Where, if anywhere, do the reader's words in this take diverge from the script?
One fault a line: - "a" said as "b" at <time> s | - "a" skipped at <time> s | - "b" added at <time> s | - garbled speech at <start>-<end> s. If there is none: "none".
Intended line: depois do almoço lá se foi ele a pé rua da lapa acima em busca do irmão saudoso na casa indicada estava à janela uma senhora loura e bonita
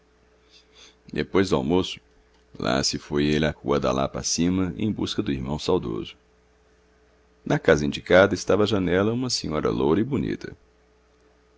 - "pé" skipped at 3.5 s